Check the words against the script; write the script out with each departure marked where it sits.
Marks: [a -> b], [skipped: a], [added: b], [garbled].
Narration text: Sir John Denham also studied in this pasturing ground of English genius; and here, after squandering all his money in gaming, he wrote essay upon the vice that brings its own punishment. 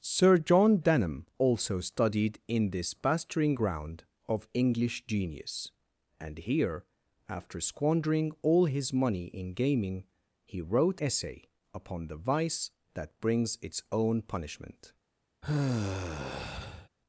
Sir John Denham also studied in this pasturing ground of English genius; and here, after squandering all his money in gaming, he wrote essay upon the vice that brings its own punishment.